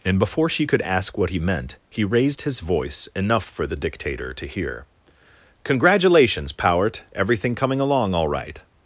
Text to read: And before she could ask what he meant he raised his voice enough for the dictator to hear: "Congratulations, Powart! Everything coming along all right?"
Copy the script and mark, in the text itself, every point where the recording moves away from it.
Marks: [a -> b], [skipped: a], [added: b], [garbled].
And before she could ask what he meant he raised his voice enough for the dictator to hear: "Congratulations, Powart! Everything coming along all right?"